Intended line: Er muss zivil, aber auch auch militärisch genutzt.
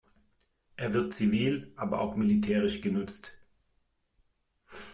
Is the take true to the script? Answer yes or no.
no